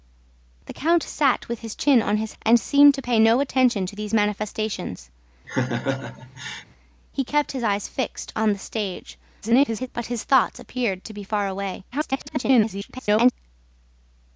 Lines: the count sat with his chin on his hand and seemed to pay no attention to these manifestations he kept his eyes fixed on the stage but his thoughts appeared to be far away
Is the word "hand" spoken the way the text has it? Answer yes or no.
no